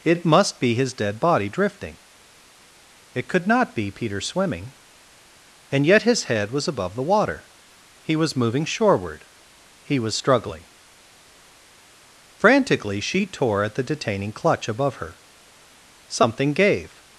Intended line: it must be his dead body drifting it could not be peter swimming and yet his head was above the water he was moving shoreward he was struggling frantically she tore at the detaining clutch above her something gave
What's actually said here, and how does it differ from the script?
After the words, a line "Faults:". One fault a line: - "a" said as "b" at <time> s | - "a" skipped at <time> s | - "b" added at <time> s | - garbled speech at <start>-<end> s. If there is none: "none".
it must be his dead body drifting it could not be peter swimming and yet his head was above the water he was moving shoreward he was struggling frantically she tore at the detaining clutch above her something gave
Faults:
none